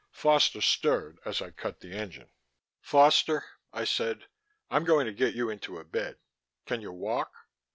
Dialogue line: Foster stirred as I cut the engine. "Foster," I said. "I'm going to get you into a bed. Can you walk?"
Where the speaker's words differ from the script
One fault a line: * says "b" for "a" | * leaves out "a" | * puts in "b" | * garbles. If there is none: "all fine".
all fine